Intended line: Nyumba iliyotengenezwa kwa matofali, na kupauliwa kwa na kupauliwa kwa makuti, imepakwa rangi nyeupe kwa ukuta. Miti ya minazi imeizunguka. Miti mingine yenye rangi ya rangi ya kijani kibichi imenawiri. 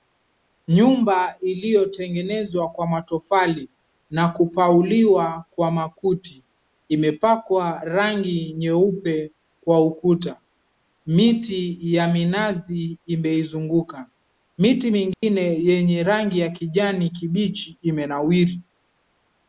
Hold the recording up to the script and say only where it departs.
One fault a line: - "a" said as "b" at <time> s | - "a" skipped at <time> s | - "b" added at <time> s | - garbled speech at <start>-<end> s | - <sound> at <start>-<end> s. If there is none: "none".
- "na kupauliwa kwa" skipped at 5.7 s
- dropout at 15.1-15.2 s
- "rangi ya" skipped at 16.5 s